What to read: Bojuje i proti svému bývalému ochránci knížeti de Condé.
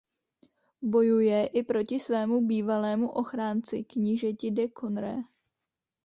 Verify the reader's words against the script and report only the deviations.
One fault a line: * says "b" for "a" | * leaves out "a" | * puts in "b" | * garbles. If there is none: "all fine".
all fine